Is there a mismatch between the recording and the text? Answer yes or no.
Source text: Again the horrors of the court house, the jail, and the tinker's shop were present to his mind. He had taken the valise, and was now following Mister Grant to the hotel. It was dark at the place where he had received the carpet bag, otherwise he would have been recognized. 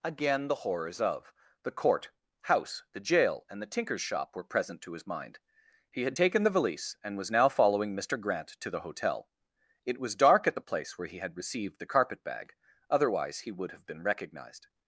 no